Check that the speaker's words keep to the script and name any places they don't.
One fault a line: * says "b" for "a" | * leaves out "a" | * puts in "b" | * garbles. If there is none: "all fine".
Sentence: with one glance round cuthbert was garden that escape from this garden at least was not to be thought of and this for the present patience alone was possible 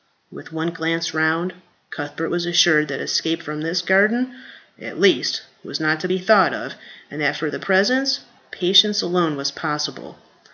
* says "assured" for "garden"
* says "that" for "this"